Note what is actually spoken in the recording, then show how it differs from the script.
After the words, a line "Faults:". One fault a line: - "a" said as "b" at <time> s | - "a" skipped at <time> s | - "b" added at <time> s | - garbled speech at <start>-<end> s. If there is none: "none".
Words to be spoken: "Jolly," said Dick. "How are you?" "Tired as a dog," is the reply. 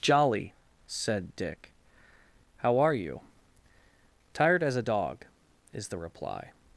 "Jolly," said Dick. "How are you?" "Tired as a dog," is the reply.
Faults:
none